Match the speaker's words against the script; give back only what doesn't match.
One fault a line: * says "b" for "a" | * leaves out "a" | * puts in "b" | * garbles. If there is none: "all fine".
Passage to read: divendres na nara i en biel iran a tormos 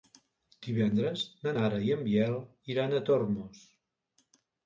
all fine